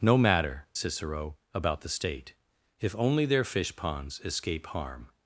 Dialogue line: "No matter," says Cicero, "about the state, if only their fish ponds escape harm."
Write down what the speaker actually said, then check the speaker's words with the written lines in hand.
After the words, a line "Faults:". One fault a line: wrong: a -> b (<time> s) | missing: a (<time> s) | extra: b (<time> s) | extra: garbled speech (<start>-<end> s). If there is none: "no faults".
"No matter," Cicero, "about the state, if only their fish ponds escape harm."
Faults:
missing: says (0.7 s)